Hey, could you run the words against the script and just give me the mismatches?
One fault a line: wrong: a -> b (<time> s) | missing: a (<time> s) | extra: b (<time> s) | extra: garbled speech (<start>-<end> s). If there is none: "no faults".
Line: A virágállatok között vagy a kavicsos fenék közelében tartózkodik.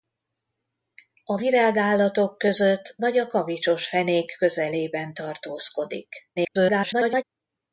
extra: garbled speech (6.4-7.2 s)